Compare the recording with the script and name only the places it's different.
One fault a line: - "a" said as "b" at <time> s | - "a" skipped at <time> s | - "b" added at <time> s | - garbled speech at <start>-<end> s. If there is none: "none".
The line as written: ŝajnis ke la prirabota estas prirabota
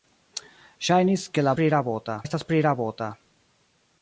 none